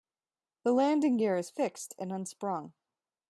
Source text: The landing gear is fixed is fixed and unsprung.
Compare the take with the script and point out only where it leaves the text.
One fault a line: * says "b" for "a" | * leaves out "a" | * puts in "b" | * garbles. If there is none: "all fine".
* leaves out "is fixed"